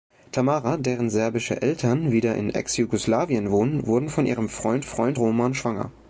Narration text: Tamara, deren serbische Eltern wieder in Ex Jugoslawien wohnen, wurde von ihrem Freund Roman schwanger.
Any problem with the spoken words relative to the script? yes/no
yes